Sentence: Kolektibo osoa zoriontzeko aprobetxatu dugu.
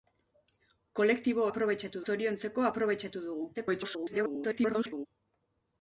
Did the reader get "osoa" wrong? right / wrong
wrong